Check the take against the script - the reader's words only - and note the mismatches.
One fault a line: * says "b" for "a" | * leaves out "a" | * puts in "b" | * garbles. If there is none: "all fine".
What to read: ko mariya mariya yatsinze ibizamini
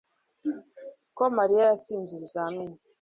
* leaves out "mariya"